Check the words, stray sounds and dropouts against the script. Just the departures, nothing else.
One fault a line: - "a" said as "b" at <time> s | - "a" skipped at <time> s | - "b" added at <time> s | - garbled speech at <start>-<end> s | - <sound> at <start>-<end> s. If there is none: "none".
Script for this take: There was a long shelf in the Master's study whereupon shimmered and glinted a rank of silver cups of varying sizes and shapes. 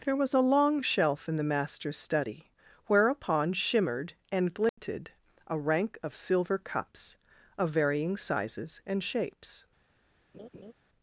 - dropout at 4.7-4.8 s
- laugh at 10.3-10.7 s